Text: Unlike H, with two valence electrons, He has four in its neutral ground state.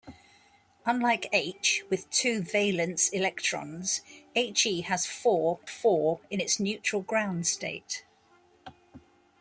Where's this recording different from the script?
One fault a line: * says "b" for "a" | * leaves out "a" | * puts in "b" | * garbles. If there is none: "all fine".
* puts in "four"